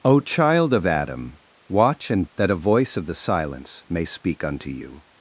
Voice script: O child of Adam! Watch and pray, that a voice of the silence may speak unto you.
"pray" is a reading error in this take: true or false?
true